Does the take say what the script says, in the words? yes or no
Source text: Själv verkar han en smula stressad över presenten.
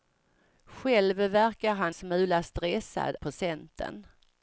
no